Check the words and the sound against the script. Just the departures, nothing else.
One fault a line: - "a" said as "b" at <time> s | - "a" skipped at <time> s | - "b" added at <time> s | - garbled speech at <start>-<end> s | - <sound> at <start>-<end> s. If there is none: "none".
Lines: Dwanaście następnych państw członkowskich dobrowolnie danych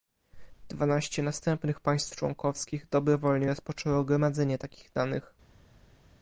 - "rozpoczęło gromadzenie takich" added at 3.5 s